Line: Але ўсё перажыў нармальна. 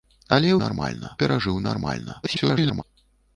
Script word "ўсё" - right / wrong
wrong